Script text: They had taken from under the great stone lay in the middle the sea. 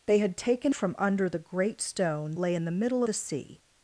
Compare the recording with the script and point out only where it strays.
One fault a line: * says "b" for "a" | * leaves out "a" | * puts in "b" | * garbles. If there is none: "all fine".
all fine